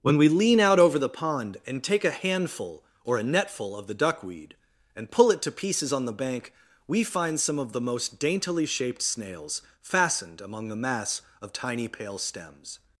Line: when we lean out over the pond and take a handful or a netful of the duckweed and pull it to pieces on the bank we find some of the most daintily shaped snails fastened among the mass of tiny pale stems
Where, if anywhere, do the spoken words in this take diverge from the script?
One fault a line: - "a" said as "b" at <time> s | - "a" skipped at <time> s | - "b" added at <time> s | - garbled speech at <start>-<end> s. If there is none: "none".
none